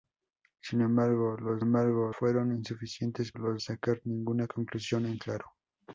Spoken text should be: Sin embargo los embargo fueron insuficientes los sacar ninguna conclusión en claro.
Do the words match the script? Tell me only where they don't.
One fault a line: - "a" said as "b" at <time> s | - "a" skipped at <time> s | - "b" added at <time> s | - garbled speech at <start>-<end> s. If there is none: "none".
none